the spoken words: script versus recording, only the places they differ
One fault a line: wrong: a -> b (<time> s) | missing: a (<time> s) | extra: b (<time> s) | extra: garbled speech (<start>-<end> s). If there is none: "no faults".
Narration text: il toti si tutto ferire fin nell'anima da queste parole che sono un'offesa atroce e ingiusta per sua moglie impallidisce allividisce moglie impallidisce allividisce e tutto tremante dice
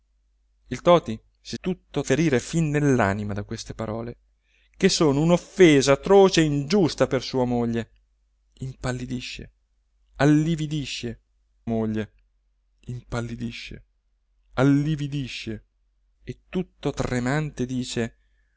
no faults